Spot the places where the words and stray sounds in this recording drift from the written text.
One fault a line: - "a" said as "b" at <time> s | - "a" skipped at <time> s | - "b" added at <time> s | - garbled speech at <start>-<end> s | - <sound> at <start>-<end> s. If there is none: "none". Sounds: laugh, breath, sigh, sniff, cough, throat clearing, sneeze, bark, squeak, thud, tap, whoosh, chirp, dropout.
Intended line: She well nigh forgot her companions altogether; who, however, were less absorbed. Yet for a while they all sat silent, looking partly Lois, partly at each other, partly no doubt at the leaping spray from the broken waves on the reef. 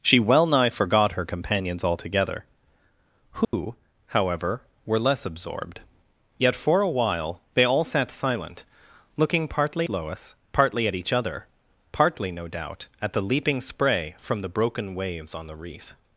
- dropout at 3.4-3.5 s